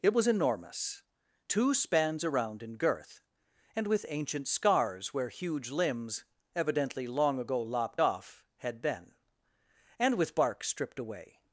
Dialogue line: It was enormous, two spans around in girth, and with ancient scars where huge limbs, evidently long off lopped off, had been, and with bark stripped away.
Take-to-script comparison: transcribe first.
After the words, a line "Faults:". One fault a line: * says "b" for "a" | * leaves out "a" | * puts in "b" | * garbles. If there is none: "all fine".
It was enormous, two spans around in girth, and with ancient scars where huge limbs, evidently long ago lopped off, had been, and with bark stripped away.
Faults:
* says "ago" for "off"